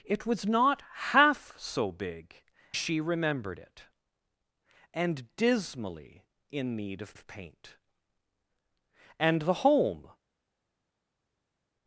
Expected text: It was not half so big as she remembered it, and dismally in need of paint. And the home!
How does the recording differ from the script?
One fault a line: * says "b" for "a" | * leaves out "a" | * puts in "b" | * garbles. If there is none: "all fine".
* leaves out "as"
* puts in "of"